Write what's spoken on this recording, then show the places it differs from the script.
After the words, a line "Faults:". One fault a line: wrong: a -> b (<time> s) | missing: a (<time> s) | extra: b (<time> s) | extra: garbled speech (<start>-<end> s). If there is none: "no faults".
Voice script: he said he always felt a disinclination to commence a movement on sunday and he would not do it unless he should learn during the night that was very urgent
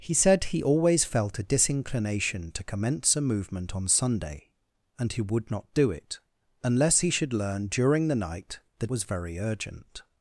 he said he always felt a disinclination to commence a movement on sunday and he would not do it unless he should learn during the night that was very urgent
Faults:
no faults